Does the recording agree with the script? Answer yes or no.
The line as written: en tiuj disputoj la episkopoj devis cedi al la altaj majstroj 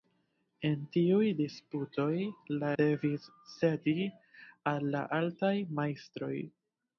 no